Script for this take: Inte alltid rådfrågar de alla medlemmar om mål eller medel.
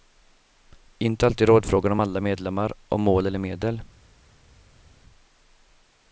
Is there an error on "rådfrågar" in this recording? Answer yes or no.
no